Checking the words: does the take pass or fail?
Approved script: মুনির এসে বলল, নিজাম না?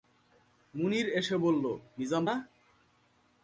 pass